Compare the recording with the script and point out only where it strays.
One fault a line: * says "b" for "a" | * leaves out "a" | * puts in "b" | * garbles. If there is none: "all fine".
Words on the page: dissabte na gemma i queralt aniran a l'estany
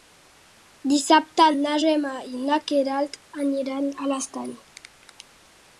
* puts in "na"